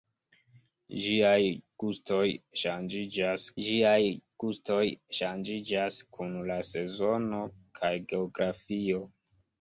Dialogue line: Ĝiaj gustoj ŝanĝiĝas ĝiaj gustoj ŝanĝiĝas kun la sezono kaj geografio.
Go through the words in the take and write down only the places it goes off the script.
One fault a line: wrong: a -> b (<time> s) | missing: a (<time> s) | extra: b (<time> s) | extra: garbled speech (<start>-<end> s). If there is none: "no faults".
no faults